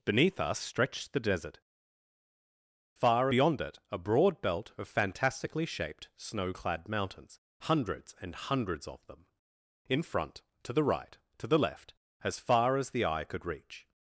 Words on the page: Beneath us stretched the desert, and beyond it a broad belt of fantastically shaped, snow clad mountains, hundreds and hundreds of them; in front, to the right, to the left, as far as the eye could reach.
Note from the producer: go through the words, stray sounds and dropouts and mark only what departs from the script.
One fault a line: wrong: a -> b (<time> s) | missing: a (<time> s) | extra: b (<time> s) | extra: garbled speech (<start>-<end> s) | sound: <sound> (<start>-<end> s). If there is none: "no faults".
wrong: and -> far (2.9 s)